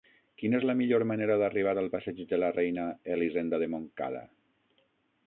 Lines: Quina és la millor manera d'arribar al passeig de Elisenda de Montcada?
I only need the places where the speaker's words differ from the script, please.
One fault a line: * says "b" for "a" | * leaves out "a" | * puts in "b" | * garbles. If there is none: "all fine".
* puts in "la Reina"